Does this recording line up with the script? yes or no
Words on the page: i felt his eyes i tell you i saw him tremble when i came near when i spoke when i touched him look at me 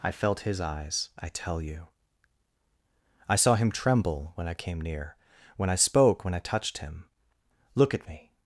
yes